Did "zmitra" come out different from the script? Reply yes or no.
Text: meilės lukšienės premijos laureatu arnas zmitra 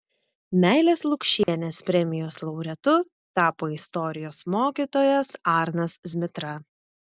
no